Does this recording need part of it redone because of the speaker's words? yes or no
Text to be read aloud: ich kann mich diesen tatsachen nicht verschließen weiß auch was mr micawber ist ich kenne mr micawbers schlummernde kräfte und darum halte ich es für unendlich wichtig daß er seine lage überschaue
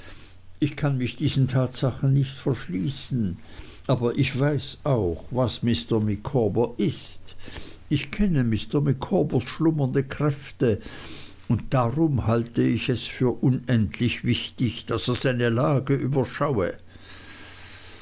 yes